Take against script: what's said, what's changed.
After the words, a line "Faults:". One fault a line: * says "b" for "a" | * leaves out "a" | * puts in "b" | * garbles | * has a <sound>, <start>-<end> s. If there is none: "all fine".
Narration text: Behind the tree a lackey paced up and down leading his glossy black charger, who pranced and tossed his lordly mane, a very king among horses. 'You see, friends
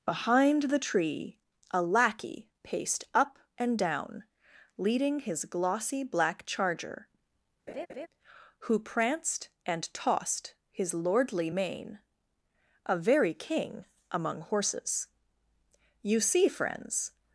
Behind the tree a lackey paced up and down leading his glossy black charger, who pranced and tossed his lordly mane, a very king among horses. 'You see, friends
Faults:
* has a laugh, 7.7-8.1 s